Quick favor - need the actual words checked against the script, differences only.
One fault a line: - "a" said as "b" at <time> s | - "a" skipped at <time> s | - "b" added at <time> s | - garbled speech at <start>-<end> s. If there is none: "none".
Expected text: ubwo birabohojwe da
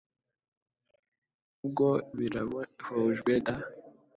none